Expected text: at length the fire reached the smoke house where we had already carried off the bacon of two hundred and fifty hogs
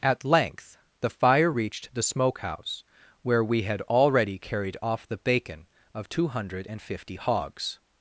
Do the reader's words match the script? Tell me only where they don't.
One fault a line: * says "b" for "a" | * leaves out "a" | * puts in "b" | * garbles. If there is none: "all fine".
all fine